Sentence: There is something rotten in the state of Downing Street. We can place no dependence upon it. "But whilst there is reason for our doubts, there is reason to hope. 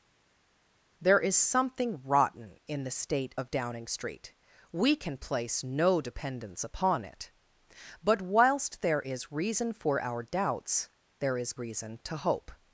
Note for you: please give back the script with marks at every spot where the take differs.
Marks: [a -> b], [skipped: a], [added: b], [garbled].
There is something rotten in the state of Downing Street. We can place no dependence upon it. "But whilst there is reason for our doubts, there is reason to hope.